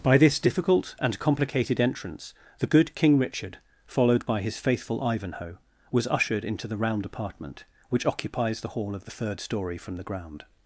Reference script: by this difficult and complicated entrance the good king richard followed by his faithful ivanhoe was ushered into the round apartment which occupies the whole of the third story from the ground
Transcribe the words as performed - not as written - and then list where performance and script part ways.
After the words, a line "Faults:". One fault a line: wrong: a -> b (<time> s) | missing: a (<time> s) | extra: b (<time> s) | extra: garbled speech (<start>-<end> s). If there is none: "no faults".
by this difficult and complicated entrance the good king richard followed by his faithful ivanhoe was ushered into the round apartment which occupies the hall of the third story from the ground
Faults:
wrong: whole -> hall (8.7 s)